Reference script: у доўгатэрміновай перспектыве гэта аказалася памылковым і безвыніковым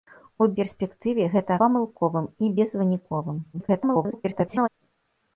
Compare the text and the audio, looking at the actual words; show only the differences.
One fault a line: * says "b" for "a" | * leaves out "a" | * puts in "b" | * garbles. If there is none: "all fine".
* leaves out "доўгатэрміновай"
* leaves out "аказалася"
* garbles